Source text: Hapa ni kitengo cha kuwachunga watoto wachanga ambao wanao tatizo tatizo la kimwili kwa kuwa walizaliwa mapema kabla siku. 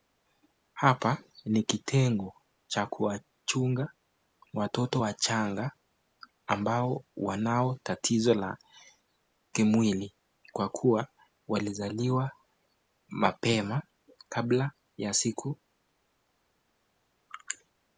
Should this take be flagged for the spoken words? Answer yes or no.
yes